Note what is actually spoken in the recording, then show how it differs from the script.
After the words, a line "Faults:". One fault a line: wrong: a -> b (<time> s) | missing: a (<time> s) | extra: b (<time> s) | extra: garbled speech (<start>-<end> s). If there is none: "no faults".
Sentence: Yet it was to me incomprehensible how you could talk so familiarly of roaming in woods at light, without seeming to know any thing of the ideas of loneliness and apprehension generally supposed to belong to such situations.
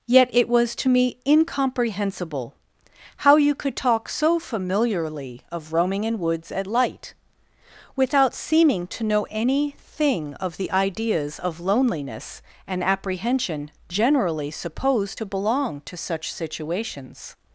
Yet it was to me incomprehensible how you could talk so familiarly of roaming in woods at light, without seeming to know any thing of the ideas of loneliness and apprehension generally supposed to belong to such situations.
Faults:
no faults